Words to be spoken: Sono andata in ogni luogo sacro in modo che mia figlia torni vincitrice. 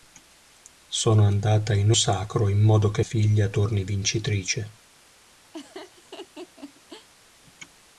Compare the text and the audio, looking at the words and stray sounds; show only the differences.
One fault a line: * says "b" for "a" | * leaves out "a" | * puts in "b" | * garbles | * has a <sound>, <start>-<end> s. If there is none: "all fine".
* leaves out "ogni luogo"
* leaves out "mia"
* has a laugh, 5.5-7.1 s